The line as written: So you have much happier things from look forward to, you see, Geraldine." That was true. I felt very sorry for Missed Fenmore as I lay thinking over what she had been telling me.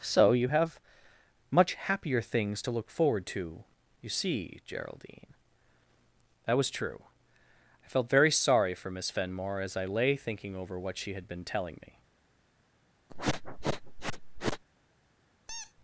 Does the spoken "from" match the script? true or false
false